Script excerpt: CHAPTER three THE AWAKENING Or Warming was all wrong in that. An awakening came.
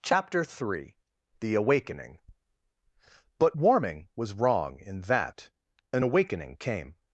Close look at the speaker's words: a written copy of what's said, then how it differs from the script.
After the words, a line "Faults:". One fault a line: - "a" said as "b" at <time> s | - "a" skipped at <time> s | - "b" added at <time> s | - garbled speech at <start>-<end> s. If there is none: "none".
CHAPTER three THE AWAKENING But Warming was wrong in that. An awakening came.
Faults:
- "Or" said as "But" at 3.4 s
- "all" skipped at 4.3 s